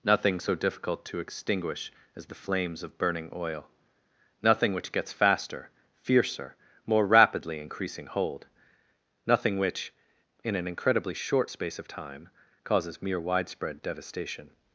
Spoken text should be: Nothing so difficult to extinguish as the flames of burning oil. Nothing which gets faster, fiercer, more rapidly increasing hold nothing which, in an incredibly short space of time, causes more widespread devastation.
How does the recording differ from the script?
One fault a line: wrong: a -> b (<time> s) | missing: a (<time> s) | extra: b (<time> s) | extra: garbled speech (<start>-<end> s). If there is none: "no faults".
wrong: more -> mere (13.0 s)